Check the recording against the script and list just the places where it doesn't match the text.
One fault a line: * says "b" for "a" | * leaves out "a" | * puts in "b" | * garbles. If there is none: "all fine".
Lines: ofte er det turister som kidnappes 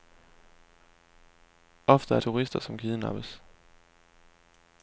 * leaves out "det"